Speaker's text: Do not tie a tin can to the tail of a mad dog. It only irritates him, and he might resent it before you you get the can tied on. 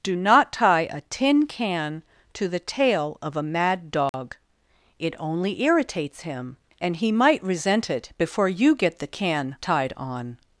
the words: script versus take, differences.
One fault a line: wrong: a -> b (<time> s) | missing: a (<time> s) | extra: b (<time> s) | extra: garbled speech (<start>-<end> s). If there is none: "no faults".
missing: you (8.8 s)